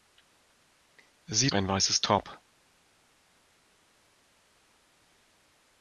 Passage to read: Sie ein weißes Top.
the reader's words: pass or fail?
pass